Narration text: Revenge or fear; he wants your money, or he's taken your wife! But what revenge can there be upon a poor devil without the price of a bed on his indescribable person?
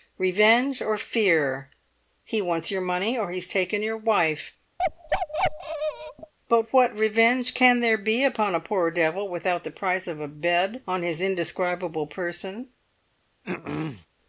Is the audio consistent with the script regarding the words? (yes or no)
yes